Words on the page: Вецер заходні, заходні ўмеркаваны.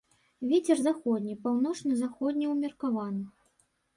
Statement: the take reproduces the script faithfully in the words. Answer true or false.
false